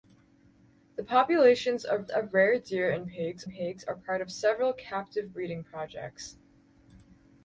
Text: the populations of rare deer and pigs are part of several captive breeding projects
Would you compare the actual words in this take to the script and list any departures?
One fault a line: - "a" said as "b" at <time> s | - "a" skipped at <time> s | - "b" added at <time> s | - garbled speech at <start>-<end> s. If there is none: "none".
- "of" added at 2.1 s
- "pigs" added at 3.5 s